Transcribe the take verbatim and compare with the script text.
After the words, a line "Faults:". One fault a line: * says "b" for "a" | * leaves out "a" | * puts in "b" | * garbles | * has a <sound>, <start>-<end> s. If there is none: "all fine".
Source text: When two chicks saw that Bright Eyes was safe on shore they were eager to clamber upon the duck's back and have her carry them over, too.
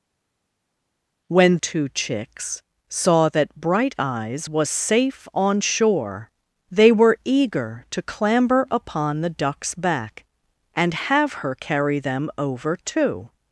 When two chicks saw that Bright Eyes was safe on shore they were eager to clamber upon the duck's back and have her carry them over, too.
Faults:
all fine